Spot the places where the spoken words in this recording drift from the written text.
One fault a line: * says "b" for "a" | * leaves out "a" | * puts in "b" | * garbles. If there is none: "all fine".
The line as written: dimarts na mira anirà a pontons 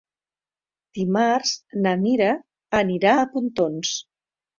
all fine